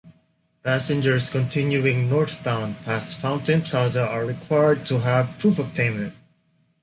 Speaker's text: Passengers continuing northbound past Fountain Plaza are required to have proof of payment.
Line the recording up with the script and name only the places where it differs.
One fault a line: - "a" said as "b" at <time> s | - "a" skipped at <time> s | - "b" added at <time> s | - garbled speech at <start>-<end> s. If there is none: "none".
none